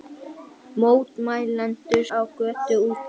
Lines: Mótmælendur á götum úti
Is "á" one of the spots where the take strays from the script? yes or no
no